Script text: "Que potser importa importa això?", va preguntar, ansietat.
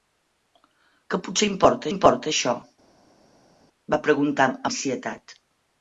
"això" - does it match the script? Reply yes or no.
yes